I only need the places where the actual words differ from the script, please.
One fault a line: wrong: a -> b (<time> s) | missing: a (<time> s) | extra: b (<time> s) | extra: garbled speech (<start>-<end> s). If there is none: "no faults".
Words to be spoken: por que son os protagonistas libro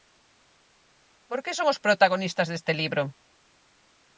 extra: deste (2.5 s)